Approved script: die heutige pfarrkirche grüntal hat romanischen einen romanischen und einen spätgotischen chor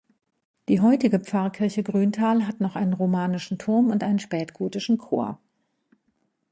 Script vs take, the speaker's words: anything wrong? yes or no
yes